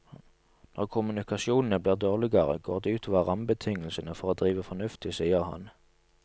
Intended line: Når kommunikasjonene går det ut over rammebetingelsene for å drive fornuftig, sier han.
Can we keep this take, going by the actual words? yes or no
no